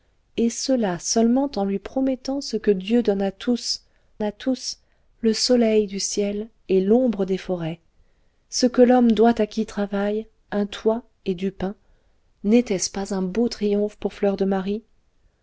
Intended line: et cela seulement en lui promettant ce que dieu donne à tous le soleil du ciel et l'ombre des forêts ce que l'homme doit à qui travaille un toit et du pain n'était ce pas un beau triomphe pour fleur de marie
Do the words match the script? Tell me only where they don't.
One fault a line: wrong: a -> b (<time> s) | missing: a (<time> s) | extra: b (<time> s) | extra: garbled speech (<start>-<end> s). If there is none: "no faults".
extra: à tous (4.2 s)